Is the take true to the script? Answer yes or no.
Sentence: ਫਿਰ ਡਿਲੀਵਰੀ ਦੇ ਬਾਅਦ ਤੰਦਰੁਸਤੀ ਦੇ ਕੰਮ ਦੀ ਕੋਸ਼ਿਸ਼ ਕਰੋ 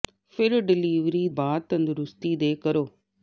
no